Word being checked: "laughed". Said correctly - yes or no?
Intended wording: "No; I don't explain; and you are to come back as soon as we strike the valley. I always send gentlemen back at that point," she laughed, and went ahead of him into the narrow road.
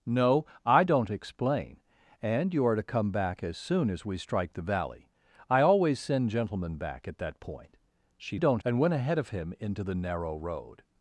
no